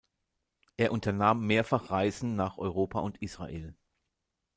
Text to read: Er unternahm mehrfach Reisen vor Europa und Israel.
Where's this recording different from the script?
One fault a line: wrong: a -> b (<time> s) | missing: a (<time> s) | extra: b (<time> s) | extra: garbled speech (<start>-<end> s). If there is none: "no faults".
wrong: vor -> nach (2.4 s)